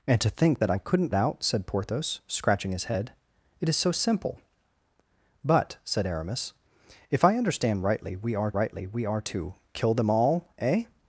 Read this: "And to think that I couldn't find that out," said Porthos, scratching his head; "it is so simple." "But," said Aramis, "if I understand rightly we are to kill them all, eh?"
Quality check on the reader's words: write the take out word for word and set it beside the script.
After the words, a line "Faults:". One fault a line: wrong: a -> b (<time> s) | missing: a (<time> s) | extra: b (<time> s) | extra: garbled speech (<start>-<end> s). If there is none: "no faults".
"And to think that I couldn't out," said Porthos, scratching his head; "it is so simple." "But," said Aramis, "if I understand rightly we are rightly we are to kill them all, eh?"
Faults:
missing: find that (1.1 s)
extra: rightly we are (8.5 s)